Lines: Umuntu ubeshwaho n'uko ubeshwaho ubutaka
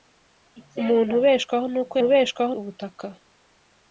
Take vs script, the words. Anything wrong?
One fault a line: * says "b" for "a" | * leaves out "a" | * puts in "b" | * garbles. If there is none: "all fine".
all fine